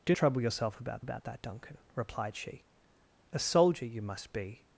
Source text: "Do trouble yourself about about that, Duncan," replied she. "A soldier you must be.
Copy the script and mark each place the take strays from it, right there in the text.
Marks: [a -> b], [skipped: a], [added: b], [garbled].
"Do trouble yourself about about that, Duncan," replied she. "A soldier you must be.